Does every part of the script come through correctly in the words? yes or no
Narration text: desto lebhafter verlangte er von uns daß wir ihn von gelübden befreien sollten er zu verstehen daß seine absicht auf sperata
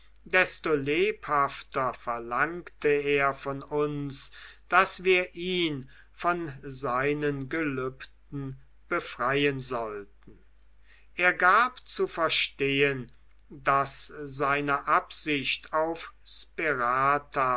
no